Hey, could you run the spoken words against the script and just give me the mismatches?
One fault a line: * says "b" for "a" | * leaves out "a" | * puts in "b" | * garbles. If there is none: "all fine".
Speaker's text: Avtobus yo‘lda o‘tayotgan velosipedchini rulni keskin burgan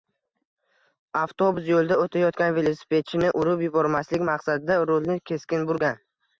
* puts in "urib yubormaslik maqsadida"